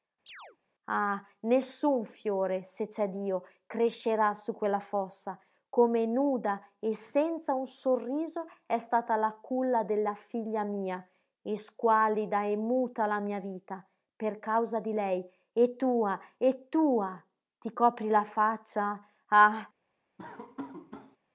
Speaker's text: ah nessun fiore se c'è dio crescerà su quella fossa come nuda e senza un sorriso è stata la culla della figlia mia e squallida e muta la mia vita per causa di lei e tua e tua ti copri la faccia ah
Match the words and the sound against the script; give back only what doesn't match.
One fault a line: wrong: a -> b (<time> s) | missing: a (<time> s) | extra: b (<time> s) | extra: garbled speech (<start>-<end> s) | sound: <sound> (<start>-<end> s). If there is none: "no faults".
sound: chirp (0.3-0.6 s)
sound: laugh (20.2-21.2 s)